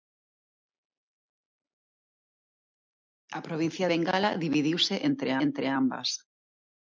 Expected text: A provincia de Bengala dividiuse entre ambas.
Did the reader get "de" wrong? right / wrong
wrong